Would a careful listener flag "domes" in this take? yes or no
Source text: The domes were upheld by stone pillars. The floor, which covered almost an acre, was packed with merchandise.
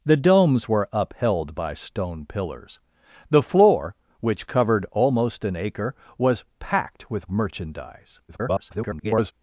no